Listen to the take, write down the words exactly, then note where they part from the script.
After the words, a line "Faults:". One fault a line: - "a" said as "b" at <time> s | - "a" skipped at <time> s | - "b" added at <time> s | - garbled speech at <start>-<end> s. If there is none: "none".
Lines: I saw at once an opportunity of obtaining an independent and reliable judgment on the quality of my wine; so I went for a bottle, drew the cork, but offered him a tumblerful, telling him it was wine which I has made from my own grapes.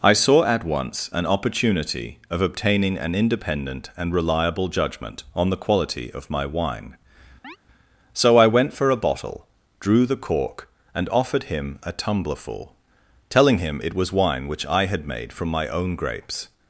I saw at once an opportunity of obtaining an independent and reliable judgment on the quality of my wine; so I went for a bottle, drew the cork, and offered him a tumblerful, telling him it was wine which I had made from my own grapes.
Faults:
- "but" said as "and" at 10.9 s
- "has" said as "had" at 14.8 s